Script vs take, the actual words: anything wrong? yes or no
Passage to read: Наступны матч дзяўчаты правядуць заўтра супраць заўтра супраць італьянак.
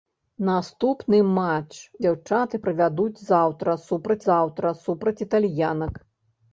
no